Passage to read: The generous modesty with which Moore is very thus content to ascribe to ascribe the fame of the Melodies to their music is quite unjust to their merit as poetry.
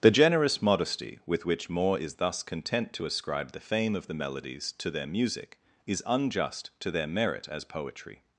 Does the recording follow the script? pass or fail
fail